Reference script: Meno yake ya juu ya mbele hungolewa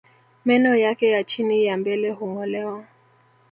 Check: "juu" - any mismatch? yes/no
yes